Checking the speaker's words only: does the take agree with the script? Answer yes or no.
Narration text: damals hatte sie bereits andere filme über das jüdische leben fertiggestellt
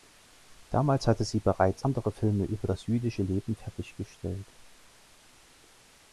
yes